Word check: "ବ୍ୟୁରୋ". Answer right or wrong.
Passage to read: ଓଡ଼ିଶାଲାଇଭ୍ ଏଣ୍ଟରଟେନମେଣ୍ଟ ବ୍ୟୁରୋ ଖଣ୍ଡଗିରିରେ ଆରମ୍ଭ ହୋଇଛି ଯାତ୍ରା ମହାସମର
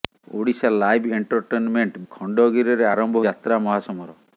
wrong